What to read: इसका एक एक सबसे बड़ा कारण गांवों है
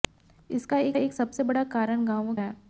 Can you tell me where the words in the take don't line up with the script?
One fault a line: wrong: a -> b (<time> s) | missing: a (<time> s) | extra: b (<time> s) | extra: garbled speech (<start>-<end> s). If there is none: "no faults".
no faults